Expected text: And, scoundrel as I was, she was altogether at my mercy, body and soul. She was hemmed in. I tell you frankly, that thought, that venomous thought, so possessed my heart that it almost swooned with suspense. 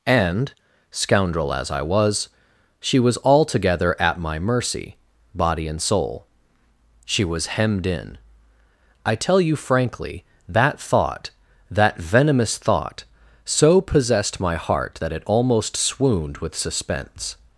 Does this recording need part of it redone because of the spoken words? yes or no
no